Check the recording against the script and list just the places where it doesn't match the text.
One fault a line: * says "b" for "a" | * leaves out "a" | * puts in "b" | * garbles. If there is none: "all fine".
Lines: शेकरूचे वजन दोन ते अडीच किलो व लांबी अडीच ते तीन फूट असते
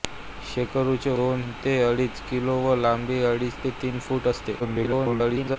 * leaves out "वजन"
* garbles